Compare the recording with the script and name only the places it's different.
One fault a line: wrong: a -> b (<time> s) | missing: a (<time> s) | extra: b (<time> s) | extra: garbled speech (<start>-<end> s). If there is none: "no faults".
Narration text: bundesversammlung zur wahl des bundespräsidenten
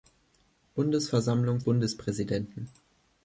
missing: zur wahl des (1.6 s)